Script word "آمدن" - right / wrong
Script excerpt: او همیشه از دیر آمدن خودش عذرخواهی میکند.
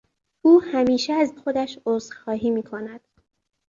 wrong